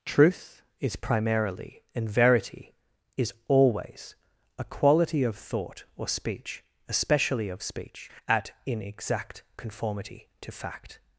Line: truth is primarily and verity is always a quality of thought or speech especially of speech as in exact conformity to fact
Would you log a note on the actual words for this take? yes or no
yes